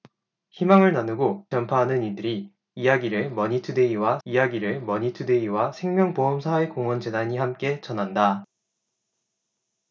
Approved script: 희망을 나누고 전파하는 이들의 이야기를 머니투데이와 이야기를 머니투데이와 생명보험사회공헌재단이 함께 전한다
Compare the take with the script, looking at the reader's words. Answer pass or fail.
pass